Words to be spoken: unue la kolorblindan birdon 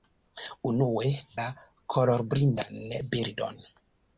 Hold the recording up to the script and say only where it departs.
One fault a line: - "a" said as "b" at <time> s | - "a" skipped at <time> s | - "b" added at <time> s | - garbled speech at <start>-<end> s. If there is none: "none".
none